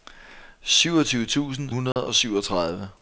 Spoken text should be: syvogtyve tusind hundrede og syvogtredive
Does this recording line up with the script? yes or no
yes